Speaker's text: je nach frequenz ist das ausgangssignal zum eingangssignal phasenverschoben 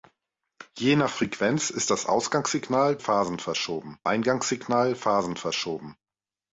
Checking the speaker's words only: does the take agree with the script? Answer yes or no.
no